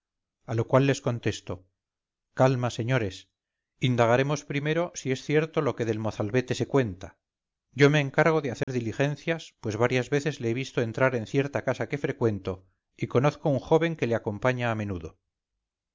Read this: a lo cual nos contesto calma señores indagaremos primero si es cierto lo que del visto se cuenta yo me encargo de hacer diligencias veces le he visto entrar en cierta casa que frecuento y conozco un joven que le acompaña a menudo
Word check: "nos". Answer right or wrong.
wrong